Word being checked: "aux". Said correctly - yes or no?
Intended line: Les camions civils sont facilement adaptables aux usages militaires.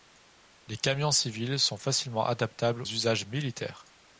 no